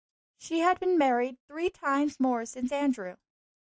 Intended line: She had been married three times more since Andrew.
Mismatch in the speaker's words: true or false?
false